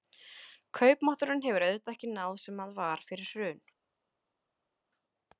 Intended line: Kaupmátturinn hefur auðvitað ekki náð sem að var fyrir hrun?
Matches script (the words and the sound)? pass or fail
pass